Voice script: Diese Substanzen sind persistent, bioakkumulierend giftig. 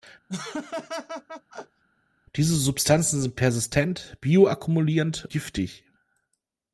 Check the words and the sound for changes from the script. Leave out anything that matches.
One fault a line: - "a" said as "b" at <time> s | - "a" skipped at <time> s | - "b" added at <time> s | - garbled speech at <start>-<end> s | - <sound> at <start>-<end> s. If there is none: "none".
- laugh at 0.3-1.8 s